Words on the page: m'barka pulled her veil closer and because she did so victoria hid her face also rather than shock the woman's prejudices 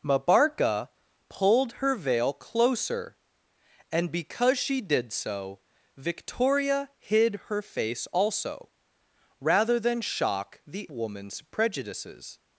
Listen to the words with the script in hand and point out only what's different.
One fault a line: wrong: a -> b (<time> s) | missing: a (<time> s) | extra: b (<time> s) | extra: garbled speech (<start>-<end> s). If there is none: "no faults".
no faults